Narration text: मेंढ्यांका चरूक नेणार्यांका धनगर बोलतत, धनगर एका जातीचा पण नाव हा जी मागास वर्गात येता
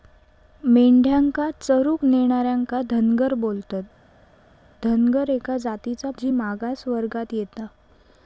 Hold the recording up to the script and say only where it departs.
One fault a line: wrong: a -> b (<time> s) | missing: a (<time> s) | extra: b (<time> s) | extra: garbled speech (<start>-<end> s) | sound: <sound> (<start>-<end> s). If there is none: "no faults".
missing: पण नाव हा (6.1 s)